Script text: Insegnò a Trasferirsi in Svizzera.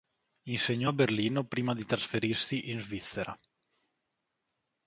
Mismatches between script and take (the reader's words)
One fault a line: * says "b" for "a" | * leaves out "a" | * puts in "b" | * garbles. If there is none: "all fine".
* puts in "Berlino prima di"